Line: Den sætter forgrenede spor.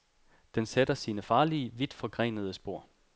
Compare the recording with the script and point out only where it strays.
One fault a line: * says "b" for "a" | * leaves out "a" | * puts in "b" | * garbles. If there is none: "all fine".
* puts in "sine farlige vidt"